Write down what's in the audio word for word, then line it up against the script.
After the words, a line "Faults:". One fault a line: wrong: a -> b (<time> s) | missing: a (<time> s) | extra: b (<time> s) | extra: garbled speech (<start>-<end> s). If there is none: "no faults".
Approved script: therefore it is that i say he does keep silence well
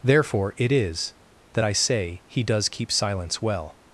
therefore it is that i say he does keep silence well
Faults:
no faults